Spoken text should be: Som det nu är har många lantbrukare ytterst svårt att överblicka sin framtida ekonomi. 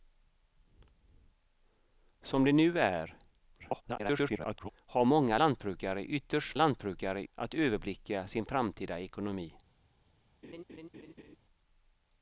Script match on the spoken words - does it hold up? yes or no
no